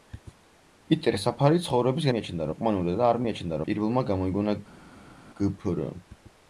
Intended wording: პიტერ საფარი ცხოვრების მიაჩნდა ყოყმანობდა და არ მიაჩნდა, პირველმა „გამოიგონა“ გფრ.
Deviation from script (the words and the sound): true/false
false